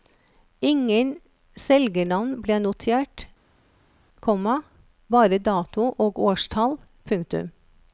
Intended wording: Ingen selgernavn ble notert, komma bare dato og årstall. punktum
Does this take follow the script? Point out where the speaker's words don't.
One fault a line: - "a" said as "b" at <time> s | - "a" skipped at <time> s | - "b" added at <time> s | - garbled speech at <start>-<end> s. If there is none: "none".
none